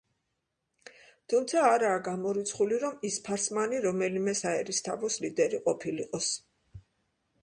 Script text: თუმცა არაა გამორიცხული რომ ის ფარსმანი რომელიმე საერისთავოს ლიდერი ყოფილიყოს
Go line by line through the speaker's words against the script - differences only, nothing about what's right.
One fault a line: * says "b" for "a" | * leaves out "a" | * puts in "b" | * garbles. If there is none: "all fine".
all fine